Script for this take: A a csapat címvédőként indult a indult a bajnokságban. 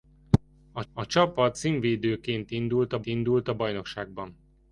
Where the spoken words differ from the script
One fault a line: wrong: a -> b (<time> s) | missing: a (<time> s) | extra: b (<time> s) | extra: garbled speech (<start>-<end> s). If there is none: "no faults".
no faults